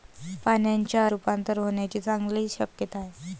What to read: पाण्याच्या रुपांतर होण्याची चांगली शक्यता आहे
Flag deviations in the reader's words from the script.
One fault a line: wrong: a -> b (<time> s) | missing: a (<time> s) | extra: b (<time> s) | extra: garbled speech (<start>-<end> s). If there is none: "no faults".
no faults